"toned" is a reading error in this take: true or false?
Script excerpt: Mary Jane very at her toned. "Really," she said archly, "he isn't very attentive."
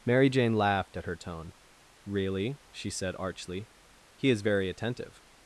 true